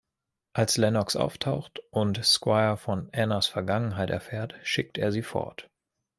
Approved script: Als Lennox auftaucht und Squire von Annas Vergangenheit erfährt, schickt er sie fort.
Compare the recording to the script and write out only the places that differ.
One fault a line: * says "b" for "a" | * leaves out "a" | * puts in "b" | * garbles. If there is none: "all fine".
all fine